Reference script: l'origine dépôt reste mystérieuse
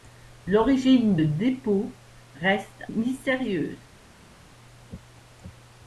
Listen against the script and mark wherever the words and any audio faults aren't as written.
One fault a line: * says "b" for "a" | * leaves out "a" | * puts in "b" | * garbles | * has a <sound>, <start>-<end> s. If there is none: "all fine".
all fine